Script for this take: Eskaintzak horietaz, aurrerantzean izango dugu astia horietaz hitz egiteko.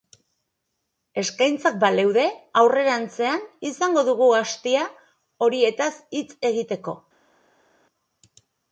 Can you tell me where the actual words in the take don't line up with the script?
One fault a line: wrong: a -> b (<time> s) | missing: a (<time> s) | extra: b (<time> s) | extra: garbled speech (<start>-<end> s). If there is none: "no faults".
wrong: horietaz -> baleude (1.8 s)